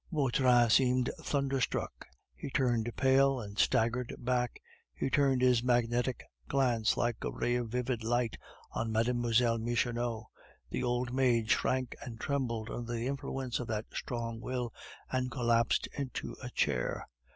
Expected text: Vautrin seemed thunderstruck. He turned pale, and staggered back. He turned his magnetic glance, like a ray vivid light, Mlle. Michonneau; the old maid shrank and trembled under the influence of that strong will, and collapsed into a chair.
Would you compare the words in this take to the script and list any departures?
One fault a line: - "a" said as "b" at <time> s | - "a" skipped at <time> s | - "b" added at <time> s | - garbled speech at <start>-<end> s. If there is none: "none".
- "of" added at 7.6 s
- "on" added at 8.7 s